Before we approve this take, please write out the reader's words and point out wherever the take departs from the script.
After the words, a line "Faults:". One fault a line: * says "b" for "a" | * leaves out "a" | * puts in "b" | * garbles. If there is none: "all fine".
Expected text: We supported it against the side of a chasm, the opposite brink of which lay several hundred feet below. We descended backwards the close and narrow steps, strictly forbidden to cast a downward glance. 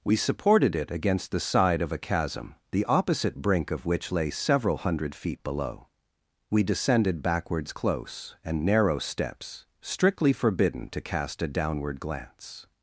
We supported it against the side of a chasm, the opposite brink of which lay several hundred feet below. We descended backwards close and narrow steps, strictly forbidden to cast a downward glance.
Faults:
* leaves out "the"